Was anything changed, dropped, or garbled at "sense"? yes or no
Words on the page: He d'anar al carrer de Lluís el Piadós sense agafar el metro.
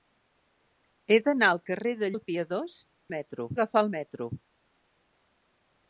yes